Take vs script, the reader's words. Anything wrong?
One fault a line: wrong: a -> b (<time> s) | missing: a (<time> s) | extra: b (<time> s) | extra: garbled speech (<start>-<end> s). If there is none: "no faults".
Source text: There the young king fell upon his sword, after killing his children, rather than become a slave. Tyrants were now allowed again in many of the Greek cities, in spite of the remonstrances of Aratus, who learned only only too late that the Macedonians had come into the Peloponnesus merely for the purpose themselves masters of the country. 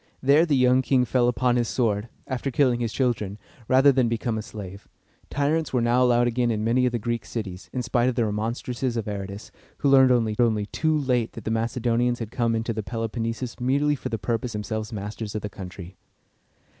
no faults